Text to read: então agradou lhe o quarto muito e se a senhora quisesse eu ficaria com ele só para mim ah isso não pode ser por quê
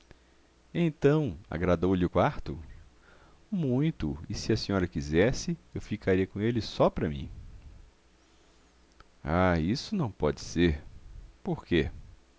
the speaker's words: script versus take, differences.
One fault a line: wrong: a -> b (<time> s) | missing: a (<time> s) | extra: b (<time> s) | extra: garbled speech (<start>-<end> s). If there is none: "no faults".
no faults